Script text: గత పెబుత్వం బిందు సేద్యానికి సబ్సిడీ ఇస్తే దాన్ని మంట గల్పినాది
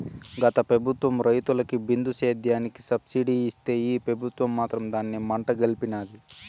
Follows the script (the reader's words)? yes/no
no